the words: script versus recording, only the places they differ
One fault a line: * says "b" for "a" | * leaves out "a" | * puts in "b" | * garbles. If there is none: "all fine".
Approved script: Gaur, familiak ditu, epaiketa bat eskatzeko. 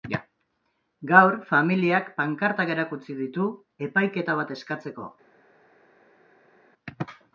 * puts in "pankartak erakutsi"